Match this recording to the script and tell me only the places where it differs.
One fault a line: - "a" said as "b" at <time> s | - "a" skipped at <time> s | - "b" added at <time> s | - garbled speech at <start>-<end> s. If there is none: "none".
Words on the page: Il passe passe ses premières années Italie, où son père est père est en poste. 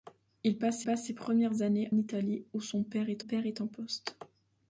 none